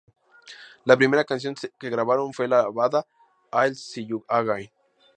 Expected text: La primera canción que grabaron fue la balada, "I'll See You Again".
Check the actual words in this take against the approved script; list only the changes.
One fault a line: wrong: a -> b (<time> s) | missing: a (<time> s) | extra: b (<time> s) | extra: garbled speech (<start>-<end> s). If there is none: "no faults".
no faults